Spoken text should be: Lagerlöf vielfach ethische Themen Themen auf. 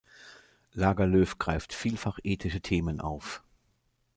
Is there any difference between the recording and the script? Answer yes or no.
yes